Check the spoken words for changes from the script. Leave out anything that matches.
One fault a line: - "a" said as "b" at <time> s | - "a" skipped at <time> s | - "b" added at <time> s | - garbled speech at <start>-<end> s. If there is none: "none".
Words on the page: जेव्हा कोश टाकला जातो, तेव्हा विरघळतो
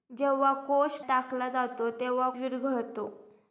none